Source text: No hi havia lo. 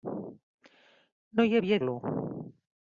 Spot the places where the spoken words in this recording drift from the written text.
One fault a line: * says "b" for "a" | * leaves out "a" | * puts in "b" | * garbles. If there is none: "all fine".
all fine